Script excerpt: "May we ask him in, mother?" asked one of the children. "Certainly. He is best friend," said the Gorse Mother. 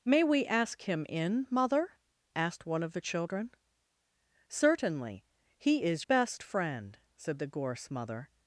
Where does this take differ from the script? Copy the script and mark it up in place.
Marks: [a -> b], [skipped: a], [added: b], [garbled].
"May we ask him in, mother?" asked one of the children. "Certainly. He is best friend," said the Gorse Mother.